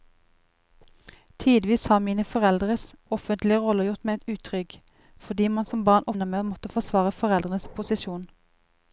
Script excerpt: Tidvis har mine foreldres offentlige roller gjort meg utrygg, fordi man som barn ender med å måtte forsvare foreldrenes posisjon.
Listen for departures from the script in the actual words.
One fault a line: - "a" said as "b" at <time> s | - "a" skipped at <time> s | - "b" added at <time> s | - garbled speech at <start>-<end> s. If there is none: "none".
none